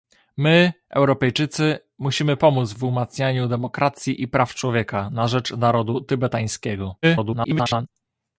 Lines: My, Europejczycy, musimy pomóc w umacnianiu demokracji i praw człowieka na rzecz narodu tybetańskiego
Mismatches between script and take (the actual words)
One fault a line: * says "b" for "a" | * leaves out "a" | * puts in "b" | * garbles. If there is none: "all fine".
* garbles